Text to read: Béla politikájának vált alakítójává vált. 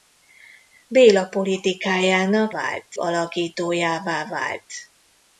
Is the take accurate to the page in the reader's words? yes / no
yes